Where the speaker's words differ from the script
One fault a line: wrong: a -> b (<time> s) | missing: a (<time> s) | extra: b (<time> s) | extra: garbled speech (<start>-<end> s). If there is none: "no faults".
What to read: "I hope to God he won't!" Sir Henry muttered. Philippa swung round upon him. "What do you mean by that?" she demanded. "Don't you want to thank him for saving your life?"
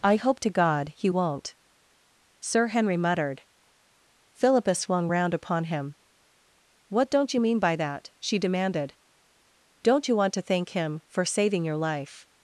wrong: do -> don't (7.1 s)